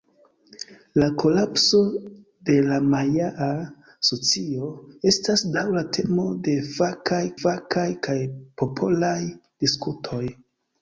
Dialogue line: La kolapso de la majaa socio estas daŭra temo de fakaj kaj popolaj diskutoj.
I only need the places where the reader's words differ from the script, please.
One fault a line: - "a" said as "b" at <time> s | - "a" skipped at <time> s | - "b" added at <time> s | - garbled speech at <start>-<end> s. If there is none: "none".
- "fakaj" added at 7.4 s